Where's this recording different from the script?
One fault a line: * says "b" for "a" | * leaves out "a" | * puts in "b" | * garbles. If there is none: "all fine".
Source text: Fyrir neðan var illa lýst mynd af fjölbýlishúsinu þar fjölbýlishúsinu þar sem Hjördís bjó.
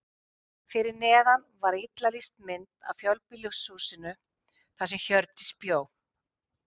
* leaves out "fjölbýlishúsinu þar"